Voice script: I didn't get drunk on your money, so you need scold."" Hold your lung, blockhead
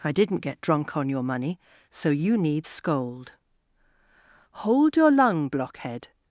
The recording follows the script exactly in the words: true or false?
true